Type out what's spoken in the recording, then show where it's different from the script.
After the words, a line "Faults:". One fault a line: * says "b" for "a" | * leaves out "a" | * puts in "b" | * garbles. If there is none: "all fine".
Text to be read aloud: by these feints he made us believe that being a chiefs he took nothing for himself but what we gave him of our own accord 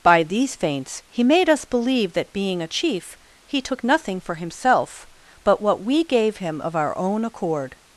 by these feints he made us believe that being a chief he took nothing for himself but what we gave him of our own accord
Faults:
* says "chief" for "chiefs"